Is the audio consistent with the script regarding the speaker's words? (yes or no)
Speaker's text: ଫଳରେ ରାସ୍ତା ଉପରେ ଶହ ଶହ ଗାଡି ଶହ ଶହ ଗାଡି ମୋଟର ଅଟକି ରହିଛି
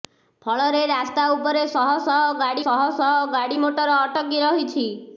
yes